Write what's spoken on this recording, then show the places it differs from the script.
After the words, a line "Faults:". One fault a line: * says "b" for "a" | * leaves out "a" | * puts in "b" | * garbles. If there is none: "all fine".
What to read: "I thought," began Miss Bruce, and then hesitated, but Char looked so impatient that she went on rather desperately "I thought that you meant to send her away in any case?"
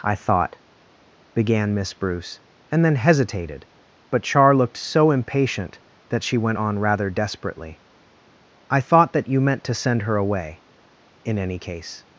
"I thought," began Miss Bruce, and then hesitated, but Char looked so impatient that she went on rather desperately "I thought that you meant to send her away in any case?"
Faults:
all fine